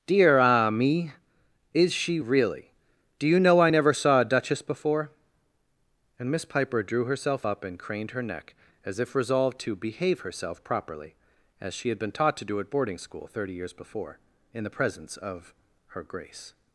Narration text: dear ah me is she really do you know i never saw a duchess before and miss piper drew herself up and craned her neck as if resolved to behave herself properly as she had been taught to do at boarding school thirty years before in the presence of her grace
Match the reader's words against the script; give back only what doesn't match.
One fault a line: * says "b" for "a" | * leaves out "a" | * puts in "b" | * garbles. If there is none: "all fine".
all fine